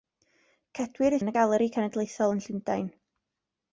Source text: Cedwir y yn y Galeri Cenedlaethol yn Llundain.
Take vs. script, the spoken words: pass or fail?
pass